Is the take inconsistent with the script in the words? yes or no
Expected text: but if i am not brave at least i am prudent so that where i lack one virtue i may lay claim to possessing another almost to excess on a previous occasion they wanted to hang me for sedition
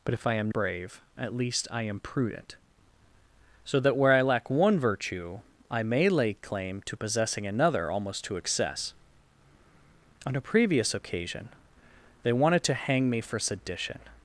yes